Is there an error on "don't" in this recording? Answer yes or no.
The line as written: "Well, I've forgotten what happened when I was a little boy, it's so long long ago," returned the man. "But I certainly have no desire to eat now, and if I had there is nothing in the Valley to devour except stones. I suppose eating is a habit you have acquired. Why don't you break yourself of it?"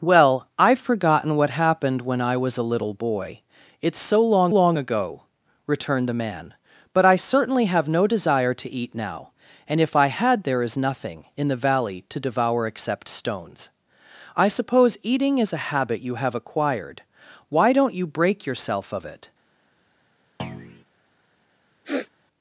no